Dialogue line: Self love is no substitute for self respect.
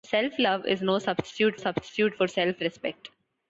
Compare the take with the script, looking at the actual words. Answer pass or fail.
fail